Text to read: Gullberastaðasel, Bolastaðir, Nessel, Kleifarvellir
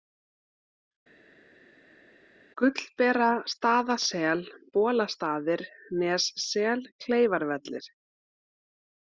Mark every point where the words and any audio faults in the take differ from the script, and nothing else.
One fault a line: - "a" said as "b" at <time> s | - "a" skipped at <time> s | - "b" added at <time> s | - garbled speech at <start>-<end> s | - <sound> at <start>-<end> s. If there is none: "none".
none